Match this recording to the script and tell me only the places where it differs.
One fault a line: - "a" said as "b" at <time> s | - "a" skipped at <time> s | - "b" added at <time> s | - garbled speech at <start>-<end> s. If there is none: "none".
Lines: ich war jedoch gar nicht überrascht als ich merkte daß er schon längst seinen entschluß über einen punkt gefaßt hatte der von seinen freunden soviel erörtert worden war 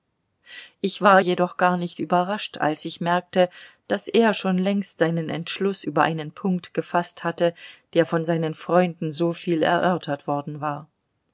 none